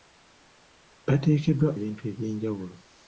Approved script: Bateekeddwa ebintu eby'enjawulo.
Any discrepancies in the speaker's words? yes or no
no